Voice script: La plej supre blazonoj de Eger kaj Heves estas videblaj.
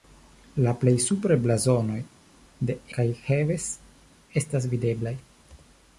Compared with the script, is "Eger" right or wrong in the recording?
wrong